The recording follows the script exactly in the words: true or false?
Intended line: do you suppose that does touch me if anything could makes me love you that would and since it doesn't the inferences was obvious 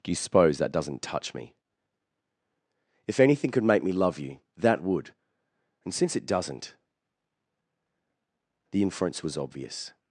false